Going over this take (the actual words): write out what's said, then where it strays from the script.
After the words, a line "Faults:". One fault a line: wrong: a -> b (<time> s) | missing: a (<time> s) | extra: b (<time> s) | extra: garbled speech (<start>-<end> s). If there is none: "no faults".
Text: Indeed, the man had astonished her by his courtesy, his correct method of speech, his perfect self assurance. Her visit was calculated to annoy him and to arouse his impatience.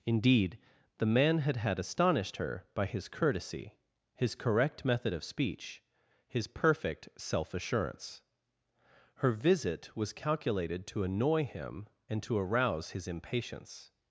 Indeed, the man had had astonished her by his courtesy, his correct method of speech, his perfect self assurance. Her visit was calculated to annoy him and to arouse his impatience.
Faults:
extra: had (1.6 s)